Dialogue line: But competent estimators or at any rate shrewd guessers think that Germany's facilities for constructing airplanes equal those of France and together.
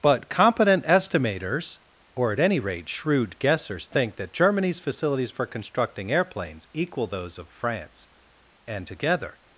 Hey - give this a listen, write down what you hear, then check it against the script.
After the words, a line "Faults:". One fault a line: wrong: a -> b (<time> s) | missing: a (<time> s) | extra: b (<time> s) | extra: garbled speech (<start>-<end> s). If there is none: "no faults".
But competent estimators or at any rate shrewd guessers think that Germany's facilities for constructing airplanes equal those of France and together.
Faults:
no faults